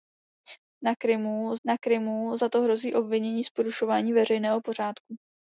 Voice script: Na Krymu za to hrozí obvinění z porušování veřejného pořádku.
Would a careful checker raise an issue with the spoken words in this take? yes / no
yes